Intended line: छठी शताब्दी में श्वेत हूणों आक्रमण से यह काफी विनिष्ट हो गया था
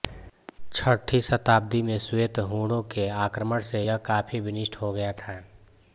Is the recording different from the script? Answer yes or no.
yes